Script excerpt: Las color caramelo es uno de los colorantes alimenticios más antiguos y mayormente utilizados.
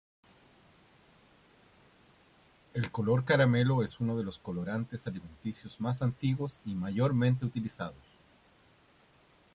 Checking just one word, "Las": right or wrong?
wrong